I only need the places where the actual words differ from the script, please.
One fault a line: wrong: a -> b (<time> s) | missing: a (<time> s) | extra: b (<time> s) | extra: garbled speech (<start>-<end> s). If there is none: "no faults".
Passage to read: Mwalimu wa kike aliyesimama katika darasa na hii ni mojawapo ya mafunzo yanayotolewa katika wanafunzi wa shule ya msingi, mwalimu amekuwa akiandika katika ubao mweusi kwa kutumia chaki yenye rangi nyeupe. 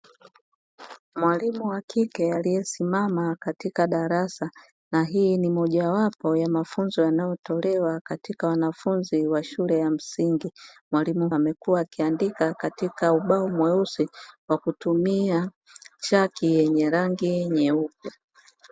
no faults